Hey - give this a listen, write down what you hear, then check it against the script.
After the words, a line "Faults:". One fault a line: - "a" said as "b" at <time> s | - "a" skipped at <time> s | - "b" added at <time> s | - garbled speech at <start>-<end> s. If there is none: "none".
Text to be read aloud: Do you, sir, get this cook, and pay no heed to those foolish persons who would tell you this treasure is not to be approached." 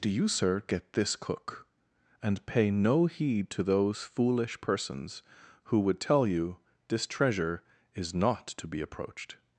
Do you, sir, get this cook, and pay no heed to those foolish persons who would tell you this treasure is not to be approached."
Faults:
none